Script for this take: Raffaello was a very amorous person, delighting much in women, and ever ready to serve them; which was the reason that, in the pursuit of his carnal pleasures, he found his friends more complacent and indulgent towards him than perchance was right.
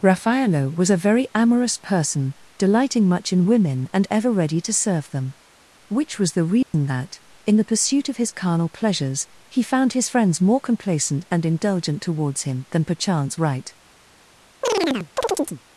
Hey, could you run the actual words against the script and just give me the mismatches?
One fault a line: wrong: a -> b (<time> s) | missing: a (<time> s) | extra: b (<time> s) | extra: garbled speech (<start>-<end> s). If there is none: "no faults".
missing: was (13.4 s)